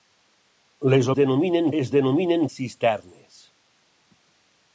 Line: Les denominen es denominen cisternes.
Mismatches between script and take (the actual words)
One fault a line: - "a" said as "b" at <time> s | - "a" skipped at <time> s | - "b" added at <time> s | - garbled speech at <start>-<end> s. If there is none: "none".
none